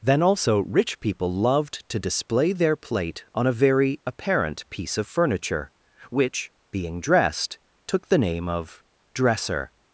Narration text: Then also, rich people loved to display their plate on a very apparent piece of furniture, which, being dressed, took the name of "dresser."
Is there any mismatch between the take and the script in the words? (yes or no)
no